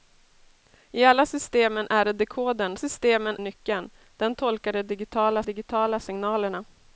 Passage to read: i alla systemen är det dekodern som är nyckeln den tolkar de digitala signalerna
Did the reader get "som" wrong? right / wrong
wrong